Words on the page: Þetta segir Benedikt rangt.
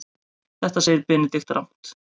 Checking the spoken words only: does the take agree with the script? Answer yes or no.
yes